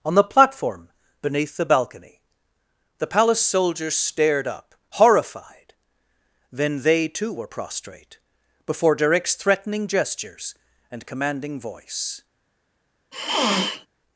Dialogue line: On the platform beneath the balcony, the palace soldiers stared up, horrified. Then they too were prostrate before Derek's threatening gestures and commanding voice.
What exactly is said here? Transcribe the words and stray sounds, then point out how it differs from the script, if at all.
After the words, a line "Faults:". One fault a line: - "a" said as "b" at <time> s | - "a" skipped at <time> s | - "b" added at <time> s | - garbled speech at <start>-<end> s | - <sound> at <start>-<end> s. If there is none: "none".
On the platform beneath the balcony, the palace soldiers stared up, horrified. Then they too were prostrate before Derek's threatening gestures and commanding voice.
Faults:
- sniff at 13.1-13.9 s